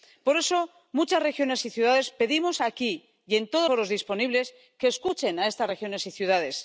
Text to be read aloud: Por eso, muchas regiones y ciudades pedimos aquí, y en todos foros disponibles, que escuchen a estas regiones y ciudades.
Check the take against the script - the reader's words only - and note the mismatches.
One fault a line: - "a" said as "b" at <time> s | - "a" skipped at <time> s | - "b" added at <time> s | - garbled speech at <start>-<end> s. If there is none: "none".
none